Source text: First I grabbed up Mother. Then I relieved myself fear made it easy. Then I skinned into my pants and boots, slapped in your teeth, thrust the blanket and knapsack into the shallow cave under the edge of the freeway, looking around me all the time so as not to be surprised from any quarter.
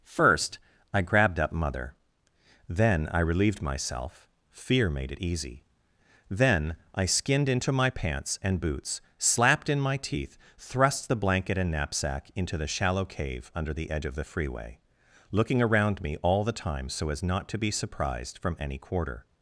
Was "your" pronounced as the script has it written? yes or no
no